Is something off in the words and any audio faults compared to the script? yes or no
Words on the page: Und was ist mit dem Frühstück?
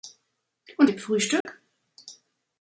yes